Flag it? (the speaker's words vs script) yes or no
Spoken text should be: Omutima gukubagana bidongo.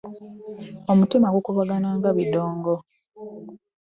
yes